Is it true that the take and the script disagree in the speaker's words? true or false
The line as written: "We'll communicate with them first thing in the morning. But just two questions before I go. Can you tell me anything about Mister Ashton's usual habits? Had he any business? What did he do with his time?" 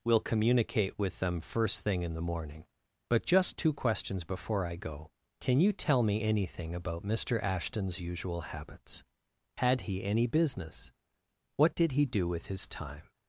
false